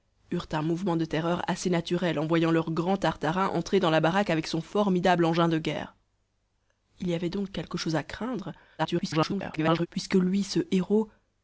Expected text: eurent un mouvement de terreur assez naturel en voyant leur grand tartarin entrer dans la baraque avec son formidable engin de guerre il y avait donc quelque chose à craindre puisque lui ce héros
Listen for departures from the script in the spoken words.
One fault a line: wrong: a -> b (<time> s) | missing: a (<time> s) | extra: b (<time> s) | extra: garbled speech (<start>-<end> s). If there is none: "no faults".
extra: garbled speech (8.8-9.9 s)